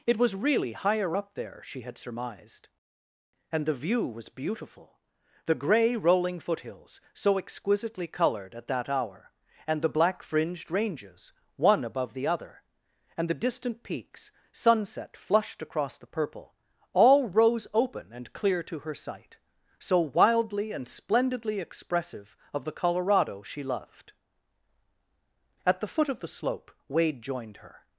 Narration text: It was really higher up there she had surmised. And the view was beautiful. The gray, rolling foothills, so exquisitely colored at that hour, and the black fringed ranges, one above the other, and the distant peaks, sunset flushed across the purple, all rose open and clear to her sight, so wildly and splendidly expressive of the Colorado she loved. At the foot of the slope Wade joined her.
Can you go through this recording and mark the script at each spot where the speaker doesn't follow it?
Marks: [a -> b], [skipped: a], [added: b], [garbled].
It was really higher up there she had surmised. And the view was beautiful. The gray, rolling foothills, so exquisitely colored at that hour, and the black fringed ranges, one above the other, and the distant peaks, sunset flushed across the purple, all rose open and clear to her sight, so wildly and splendidly expressive of the Colorado she loved. At the foot of the slope Wade joined her.